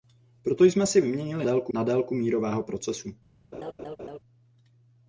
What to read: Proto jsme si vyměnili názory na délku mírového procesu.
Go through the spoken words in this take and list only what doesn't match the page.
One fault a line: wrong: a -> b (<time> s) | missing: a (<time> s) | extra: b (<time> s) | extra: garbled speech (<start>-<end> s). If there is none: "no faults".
wrong: názory -> délku (1.4 s)